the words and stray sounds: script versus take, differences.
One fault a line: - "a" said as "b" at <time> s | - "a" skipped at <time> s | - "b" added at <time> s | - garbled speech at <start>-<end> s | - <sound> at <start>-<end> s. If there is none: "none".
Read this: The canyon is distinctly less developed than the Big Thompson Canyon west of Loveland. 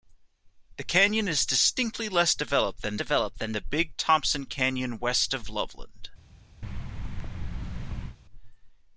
- "developed than" added at 2.9 s
- thud at 6.6-8.2 s